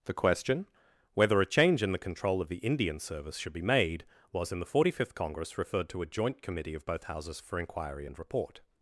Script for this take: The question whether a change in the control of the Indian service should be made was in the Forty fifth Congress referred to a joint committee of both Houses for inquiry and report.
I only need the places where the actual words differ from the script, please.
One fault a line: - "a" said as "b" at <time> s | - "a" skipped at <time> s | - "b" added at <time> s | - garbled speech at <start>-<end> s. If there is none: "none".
none